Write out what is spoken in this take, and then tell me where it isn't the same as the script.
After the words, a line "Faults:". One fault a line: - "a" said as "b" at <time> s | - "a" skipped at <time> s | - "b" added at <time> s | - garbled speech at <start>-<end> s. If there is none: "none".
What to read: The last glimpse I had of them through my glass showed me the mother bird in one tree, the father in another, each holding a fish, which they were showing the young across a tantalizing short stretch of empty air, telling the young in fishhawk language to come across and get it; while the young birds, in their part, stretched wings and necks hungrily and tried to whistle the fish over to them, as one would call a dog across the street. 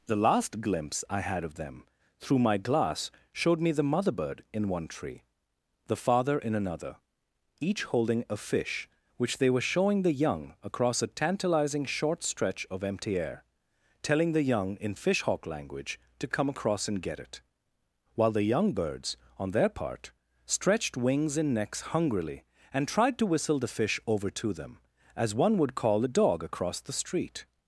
The last glimpse I had of them through my glass showed me the mother bird in one tree, the father in another, each holding a fish, which they were showing the young across a tantalizing short stretch of empty air, telling the young in fishhawk language to come across and get it; while the young birds, on their part, stretched wings and necks hungrily and tried to whistle the fish over to them, as one would call a dog across the street.
Faults:
- "in" said as "on" at 19.4 s